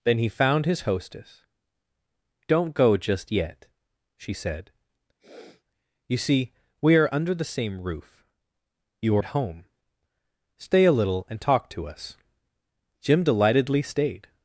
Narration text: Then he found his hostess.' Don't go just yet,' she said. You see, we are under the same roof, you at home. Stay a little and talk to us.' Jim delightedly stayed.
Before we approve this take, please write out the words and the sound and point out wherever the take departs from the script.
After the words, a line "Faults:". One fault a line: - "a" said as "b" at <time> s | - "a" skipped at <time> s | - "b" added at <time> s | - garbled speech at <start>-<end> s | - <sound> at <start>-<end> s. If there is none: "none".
Then he found his hostess.' Don't go just yet,' she said. You see, we are under the same roof, you at home. Stay a little and talk to us.' Jim delightedly stayed.
Faults:
- sniff at 5.2-5.6 s